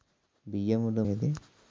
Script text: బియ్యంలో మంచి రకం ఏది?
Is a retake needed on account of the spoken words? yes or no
yes